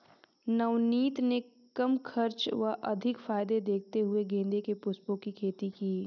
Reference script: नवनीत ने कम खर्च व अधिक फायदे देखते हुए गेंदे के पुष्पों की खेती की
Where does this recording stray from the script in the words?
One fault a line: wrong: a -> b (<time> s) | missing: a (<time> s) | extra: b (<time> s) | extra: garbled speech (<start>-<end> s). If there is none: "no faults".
no faults